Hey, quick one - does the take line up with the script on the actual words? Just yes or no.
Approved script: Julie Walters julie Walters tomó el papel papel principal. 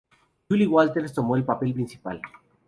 no